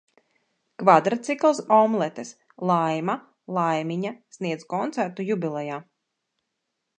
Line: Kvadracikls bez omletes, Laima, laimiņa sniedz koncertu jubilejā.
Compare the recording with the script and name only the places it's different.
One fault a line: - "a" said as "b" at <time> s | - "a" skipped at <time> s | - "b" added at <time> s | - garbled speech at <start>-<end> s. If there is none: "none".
- "bez" skipped at 1.6 s